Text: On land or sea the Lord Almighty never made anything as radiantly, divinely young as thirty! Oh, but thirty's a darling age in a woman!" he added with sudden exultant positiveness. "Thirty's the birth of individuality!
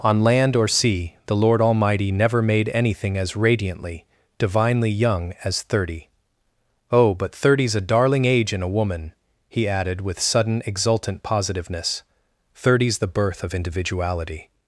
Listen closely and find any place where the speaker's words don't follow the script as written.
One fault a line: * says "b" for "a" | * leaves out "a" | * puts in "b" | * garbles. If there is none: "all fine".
all fine